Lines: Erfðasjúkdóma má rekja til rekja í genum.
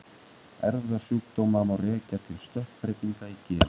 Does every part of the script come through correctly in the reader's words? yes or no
no